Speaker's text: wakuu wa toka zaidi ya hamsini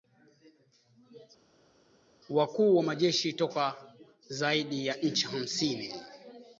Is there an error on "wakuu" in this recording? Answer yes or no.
no